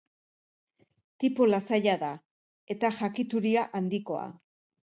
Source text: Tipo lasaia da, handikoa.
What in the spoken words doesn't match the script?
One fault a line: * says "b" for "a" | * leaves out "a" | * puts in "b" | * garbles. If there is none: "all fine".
* puts in "eta jakituria"